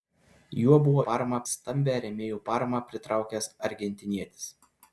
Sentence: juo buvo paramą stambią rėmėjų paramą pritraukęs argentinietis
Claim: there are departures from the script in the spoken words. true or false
false